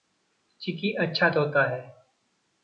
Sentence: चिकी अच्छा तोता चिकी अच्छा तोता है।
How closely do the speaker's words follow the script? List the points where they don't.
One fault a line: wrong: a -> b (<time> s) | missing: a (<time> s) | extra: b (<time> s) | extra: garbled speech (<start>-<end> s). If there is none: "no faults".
missing: चिकी अच्छा तोता (1.6 s)